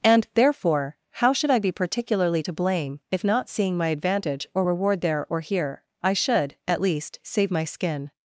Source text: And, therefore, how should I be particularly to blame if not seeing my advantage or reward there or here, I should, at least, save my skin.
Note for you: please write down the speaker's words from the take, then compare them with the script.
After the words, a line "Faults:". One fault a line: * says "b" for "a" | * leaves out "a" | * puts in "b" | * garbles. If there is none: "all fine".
And, therefore, how should I be particularly to blame if not seeing my advantage or reward there or here, I should, at least, save my skin.
Faults:
all fine